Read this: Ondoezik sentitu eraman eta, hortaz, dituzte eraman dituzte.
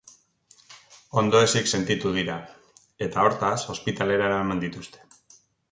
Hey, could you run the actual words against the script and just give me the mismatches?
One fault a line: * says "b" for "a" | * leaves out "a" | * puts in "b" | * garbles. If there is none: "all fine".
* says "dira" for "eraman"
* says "ospitalera" for "dituzte"